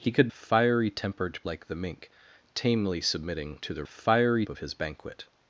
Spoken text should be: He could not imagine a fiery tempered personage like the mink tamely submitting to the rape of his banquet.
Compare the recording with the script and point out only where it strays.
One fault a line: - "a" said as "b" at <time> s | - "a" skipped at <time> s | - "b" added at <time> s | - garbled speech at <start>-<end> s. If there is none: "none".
- "not imagine a" skipped at 0.3 s
- "personage" skipped at 1.4 s
- "rape" said as "fiery" at 3.8 s